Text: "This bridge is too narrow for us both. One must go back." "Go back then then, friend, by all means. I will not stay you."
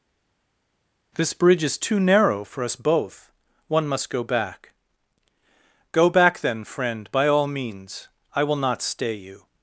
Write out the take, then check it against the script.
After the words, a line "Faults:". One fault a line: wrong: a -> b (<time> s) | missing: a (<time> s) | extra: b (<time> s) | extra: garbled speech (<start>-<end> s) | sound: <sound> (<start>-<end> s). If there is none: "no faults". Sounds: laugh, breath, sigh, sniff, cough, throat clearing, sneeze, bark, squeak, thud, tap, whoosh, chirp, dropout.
"This bridge is too narrow for us both. One must go back." "Go back then, friend, by all means. I will not stay you."
Faults:
missing: then (6.6 s)